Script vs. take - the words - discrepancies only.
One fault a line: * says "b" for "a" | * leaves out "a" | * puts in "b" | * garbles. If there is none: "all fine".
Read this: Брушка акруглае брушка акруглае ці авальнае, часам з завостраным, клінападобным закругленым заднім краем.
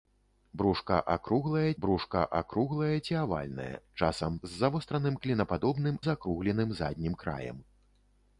all fine